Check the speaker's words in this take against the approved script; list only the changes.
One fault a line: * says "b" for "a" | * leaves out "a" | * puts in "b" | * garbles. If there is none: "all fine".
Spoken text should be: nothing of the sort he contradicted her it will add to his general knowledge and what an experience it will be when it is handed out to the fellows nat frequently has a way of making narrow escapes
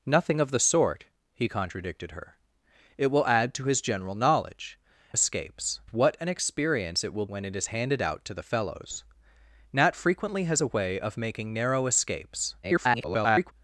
* says "escapes" for "and"
* leaves out "be"
* garbles